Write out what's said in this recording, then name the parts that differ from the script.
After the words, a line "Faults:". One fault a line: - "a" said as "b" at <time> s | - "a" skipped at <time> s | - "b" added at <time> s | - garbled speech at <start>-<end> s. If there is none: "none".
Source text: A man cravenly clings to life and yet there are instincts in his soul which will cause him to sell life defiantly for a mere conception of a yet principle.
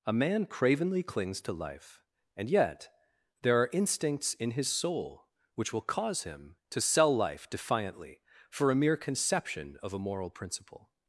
A man cravenly clings to life and yet there are instincts in his soul which will cause him to sell life defiantly for a mere conception of a moral principle.
Faults:
- "yet" said as "moral" at 10.0 s